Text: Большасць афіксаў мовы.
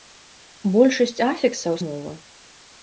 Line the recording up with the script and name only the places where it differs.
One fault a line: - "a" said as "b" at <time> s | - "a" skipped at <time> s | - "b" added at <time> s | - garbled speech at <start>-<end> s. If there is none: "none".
none